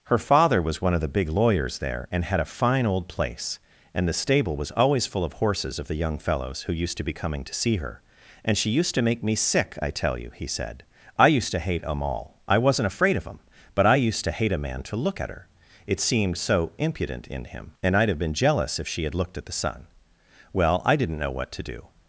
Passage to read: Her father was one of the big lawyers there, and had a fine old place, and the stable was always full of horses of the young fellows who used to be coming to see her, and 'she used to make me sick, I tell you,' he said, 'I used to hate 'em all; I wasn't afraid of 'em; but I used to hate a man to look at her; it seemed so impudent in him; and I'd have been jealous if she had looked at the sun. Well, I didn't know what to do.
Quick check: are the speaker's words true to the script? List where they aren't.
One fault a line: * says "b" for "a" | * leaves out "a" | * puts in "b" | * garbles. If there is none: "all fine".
all fine